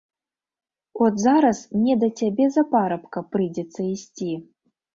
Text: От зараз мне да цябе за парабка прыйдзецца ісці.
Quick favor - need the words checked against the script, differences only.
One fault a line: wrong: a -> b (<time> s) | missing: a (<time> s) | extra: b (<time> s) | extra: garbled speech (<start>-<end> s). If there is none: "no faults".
no faults